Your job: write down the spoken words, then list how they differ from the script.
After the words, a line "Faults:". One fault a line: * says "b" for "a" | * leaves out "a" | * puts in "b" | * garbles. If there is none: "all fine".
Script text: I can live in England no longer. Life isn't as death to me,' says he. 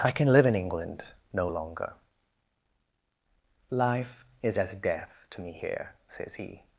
I can live in England no longer. Life is as death to me here,' says he.
Faults:
* says "is" for "isn't"
* puts in "here"